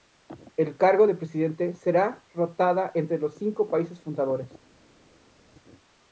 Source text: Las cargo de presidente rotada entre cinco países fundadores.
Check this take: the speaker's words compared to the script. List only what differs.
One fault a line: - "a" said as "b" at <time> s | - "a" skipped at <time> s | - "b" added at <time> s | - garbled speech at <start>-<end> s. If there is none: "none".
- "Las" said as "El" at 0.6 s
- "será" added at 1.7 s
- "los" added at 3.2 s